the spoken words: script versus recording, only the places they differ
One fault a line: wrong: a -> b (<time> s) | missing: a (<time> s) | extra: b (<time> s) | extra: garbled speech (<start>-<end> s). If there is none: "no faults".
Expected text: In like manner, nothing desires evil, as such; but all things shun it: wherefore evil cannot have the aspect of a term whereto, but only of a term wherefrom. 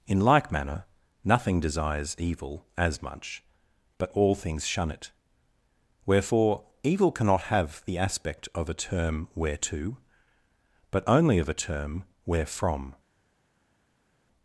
wrong: such -> much (3.0 s)